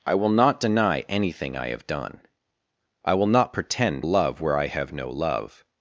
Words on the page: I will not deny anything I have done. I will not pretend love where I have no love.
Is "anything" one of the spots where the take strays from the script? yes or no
no